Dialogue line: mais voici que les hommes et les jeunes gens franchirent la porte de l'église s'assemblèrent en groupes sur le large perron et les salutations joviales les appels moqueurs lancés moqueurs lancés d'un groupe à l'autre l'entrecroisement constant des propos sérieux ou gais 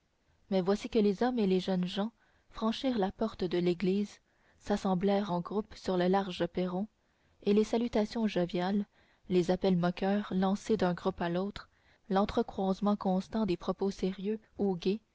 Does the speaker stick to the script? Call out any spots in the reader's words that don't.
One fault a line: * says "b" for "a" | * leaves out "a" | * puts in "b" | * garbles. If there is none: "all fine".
* leaves out "moqueurs lancés"